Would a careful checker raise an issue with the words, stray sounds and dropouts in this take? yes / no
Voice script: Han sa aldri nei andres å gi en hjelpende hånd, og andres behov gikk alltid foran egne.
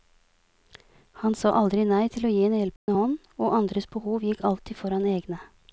yes